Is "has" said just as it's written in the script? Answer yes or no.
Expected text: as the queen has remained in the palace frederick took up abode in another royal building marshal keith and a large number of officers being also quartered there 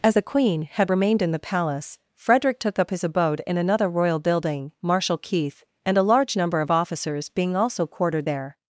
no